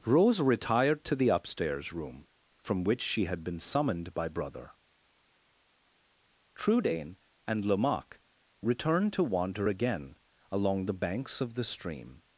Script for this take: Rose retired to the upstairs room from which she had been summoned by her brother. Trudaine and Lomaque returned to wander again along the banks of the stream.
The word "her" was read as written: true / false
false